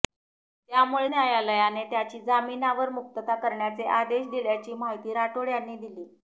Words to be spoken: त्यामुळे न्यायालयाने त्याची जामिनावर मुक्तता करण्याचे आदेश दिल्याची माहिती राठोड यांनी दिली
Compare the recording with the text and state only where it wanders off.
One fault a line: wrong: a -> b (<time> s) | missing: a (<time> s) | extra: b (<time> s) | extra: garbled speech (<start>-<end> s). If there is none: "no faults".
no faults